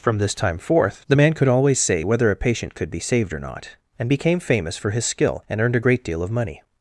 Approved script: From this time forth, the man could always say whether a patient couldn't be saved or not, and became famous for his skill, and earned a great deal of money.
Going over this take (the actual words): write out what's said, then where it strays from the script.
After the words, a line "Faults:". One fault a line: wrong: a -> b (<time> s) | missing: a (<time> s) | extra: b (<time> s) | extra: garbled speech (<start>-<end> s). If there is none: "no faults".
From this time forth, the man could always say whether a patient could be saved or not, and became famous for his skill, and earned a great deal of money.
Faults:
wrong: couldn't -> could (2.7 s)